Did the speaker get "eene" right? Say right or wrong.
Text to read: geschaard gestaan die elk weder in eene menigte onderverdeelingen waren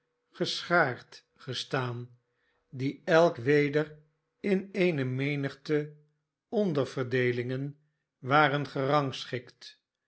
right